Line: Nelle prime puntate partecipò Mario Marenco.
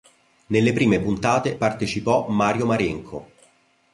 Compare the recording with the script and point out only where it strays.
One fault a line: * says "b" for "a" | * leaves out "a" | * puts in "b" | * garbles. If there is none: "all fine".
all fine